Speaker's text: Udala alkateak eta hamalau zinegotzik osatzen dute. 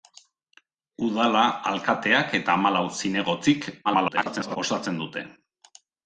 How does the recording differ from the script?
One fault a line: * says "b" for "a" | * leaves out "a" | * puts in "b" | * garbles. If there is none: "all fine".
* garbles